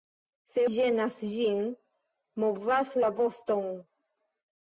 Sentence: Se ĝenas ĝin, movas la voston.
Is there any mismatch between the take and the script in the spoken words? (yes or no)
no